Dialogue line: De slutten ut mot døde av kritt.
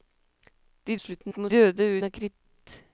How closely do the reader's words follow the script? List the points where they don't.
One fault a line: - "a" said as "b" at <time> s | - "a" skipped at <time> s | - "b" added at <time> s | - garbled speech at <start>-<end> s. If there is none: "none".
none